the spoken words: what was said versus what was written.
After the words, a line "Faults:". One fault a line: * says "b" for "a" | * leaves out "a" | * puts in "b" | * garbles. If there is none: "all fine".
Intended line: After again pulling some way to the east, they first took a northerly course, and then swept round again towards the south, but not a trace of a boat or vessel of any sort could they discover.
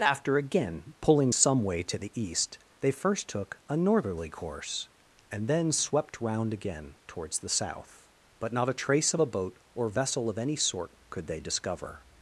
After again pulling some way to the east, they first took a northerly course, and then swept round again towards the south, but not a trace of a boat or vessel of any sort could they discover.
Faults:
all fine